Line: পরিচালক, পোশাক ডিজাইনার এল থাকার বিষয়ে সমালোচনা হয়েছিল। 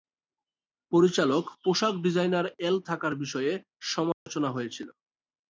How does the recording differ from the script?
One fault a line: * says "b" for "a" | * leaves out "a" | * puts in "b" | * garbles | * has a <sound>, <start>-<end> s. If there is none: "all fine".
* has a dropout, 4.1-4.3 s